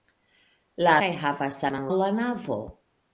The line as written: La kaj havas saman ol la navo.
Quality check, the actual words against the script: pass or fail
pass